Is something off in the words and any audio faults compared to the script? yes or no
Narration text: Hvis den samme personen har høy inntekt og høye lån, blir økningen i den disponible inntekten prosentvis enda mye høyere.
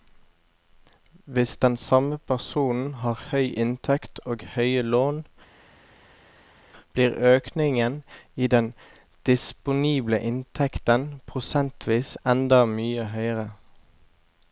no